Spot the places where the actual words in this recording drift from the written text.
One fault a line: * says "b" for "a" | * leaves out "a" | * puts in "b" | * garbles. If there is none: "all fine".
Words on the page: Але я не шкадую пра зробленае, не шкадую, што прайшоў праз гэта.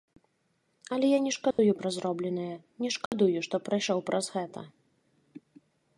all fine